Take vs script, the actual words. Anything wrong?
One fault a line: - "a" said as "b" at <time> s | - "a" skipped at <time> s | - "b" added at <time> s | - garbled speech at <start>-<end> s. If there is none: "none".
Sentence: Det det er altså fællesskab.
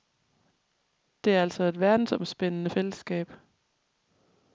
- "det" skipped at 1.4 s
- "et verdensomspændende" added at 1.6 s